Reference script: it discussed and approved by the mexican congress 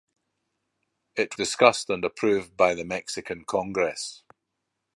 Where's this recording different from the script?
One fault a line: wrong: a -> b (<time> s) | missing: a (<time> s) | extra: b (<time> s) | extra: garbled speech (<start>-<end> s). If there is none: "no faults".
no faults